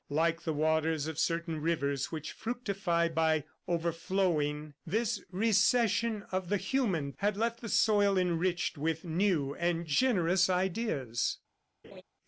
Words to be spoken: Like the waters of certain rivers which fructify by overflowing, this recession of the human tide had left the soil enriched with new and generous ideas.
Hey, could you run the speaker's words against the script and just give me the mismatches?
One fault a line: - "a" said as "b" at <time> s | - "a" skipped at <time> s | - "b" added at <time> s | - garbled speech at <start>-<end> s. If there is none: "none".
- "tide" skipped at 7.1 s